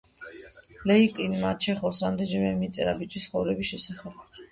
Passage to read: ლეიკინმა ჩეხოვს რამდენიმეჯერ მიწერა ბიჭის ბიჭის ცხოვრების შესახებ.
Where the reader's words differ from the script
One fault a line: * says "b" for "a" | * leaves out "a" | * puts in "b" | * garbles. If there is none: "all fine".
* leaves out "ბიჭის"